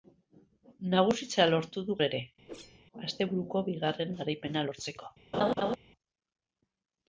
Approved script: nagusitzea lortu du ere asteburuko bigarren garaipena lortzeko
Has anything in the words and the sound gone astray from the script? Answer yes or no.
yes